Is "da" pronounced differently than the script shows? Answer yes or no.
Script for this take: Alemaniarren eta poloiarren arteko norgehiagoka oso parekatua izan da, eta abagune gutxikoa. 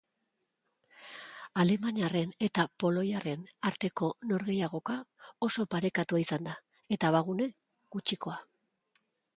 no